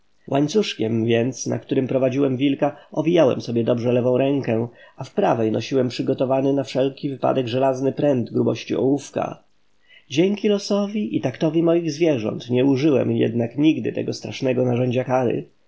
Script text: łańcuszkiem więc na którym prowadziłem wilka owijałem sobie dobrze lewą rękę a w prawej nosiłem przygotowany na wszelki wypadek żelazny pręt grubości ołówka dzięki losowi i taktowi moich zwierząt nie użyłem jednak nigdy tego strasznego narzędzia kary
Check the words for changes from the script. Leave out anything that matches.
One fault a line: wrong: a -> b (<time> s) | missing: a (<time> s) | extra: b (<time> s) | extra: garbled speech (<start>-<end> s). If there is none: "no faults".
no faults